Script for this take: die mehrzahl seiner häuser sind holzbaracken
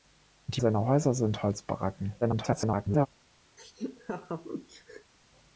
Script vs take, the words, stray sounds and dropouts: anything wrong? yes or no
yes